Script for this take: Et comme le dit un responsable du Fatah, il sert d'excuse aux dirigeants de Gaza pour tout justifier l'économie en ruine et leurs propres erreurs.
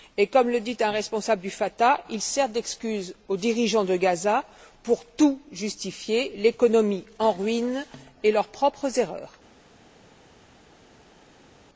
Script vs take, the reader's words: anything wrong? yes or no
no